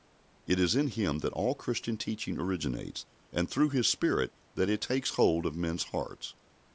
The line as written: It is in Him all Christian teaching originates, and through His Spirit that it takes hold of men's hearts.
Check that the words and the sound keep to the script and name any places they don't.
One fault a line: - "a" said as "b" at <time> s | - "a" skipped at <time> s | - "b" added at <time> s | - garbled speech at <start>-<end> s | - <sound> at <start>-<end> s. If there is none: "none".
- "that" added at 1.2 s